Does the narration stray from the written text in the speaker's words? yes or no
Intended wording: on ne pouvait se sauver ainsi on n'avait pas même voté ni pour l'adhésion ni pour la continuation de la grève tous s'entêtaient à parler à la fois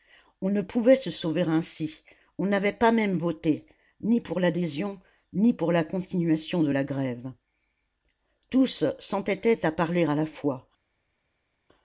no